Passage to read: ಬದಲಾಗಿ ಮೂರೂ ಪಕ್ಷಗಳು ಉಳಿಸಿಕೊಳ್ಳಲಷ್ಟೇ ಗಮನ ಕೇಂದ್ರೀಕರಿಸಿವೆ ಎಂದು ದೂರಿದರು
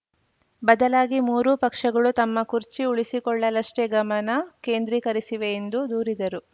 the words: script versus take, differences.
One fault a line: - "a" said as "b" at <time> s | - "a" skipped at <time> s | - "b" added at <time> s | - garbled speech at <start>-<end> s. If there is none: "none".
- "ತಮ್ಮ ಕುರ್ಚಿ" added at 2.2 s